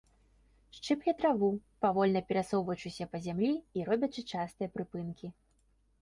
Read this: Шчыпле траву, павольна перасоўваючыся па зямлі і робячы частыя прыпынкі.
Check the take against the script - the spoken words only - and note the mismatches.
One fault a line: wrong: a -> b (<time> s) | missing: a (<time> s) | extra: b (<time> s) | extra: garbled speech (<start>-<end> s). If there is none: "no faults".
no faults